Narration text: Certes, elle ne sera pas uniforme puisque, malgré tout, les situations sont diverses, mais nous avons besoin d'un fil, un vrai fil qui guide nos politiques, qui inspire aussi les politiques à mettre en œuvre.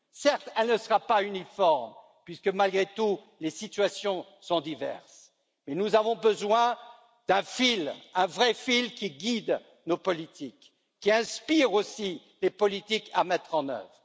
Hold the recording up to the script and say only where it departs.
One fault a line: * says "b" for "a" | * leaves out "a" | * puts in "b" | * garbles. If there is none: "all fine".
all fine